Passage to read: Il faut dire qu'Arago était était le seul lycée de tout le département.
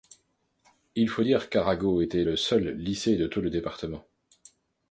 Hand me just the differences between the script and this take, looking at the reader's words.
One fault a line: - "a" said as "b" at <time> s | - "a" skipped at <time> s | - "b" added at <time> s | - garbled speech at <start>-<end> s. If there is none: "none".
- "était" skipped at 2.2 s